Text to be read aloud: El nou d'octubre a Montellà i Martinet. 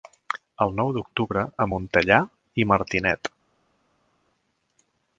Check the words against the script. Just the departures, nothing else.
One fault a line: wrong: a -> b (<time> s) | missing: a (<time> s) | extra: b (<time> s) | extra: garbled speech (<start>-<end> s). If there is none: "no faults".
no faults